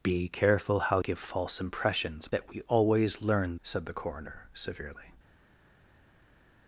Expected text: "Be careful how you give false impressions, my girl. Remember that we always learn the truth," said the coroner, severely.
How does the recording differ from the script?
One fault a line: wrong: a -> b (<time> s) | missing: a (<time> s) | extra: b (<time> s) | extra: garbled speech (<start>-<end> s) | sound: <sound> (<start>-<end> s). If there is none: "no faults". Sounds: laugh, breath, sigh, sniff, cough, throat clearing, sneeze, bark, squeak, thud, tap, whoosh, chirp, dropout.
missing: you (1.0 s)
missing: my girl Remember (2.3 s)
missing: the truth (3.6 s)